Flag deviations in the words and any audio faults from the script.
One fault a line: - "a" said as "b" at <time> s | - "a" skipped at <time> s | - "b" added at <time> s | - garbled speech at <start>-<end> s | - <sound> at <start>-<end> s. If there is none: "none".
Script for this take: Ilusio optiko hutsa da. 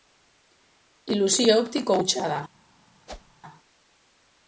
- whoosh at 3.1-3.4 s